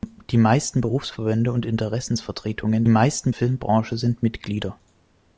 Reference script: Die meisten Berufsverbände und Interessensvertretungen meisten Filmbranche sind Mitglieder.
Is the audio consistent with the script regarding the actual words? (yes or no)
yes